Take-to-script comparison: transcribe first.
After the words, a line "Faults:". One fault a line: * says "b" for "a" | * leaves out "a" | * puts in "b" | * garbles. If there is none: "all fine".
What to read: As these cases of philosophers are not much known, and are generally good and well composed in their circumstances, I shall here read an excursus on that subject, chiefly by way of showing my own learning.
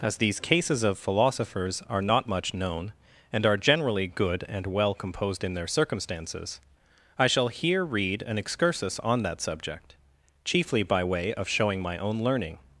As these cases of philosophers are not much known, and are generally good and well composed in their circumstances, I shall here read an excursus on that subject, chiefly by way of showing my own learning.
Faults:
all fine